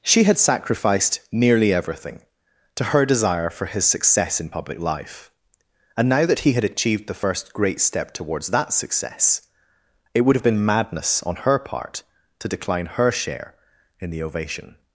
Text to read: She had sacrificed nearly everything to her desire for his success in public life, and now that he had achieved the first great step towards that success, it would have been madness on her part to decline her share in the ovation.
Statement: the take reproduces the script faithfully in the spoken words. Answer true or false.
true